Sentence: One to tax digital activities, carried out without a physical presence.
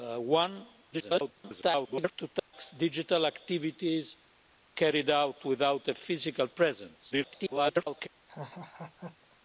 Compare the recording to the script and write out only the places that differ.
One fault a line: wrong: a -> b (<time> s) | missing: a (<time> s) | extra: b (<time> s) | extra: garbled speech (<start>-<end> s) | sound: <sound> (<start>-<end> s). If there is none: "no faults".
extra: garbled speech (0.9-2.1 s)
sound: dropout (2.4-2.5 s)
extra: garbled speech (7.1-8.1 s)
sound: laugh (8.3-9.4 s)